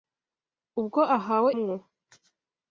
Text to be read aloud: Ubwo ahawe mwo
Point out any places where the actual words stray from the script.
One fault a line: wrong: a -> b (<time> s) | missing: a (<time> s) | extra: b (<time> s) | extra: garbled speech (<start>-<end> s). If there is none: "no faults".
no faults